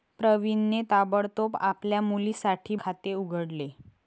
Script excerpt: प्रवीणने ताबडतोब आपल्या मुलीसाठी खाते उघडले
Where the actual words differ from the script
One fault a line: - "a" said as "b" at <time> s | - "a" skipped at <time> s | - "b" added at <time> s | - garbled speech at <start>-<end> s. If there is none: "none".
none